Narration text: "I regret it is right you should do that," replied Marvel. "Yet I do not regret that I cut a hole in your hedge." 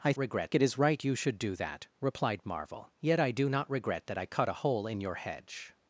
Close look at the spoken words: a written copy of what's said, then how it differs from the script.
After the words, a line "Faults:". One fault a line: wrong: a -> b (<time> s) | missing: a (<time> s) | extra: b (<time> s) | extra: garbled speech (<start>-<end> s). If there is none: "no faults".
"I regret it is right you should do that," replied Marvel. "Yet I do not regret that I cut a hole in your hedge."
Faults:
no faults